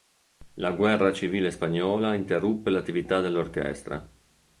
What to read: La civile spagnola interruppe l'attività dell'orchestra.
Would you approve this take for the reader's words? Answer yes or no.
no